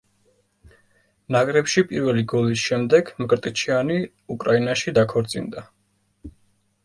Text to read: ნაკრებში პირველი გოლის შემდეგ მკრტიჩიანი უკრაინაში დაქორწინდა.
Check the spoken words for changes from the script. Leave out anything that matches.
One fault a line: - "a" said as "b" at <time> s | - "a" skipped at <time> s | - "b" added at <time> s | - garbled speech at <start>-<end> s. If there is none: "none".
none